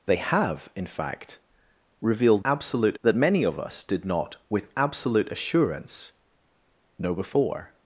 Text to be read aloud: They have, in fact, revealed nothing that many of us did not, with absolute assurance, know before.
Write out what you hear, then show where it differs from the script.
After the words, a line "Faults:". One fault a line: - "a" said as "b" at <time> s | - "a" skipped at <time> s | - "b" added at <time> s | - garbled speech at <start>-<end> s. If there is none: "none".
They have, in fact, revealed absolute that many of us did not, with absolute assurance, know before.
Faults:
- "nothing" said as "absolute" at 2.4 s